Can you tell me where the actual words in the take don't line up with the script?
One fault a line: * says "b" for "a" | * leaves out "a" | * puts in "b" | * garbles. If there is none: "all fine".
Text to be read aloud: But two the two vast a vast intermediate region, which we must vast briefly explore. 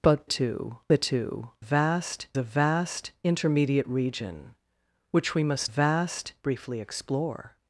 all fine